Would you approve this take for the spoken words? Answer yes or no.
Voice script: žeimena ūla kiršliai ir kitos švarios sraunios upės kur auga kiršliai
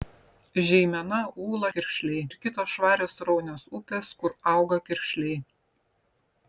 yes